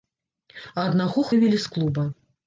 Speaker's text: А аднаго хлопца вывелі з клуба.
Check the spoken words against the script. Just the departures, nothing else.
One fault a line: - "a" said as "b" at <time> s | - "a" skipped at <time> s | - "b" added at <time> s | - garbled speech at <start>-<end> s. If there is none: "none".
- "хлопца" skipped at 1.3 s